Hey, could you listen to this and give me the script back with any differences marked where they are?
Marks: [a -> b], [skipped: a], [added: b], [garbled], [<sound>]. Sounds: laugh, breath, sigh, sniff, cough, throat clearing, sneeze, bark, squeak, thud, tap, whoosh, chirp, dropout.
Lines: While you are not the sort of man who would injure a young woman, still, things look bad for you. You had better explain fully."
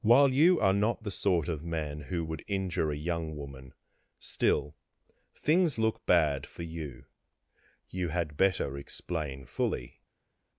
While you are not the sort of man who would injure a young woman, still, things look bad for you. You had better explain fully."